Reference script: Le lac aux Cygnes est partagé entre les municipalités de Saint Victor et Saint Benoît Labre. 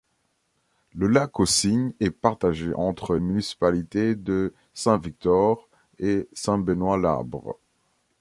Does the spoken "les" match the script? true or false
false